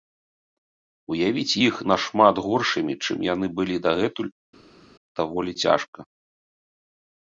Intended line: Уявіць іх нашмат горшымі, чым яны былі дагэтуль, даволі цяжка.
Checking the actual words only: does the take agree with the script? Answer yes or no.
yes